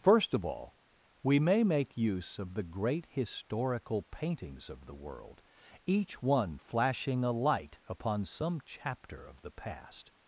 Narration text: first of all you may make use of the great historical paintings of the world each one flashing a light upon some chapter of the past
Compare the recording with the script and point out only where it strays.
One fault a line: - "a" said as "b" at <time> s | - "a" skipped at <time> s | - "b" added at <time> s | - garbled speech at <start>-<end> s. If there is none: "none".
- "you" said as "we" at 1.2 s